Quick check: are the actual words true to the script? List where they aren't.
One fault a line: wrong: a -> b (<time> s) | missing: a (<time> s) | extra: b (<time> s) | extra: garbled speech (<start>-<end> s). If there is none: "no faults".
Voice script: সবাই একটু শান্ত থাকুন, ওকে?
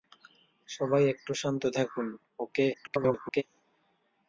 extra: garbled speech (2.7-3.4 s)